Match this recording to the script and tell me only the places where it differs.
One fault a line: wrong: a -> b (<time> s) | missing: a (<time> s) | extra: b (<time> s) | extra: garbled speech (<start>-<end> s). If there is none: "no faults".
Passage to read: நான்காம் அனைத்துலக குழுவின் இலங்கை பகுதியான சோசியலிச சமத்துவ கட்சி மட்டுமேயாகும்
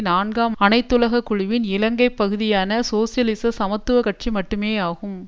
no faults